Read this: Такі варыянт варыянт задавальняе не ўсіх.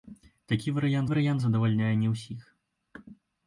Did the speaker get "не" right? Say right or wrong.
right